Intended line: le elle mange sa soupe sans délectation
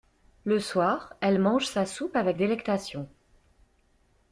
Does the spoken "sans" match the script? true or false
false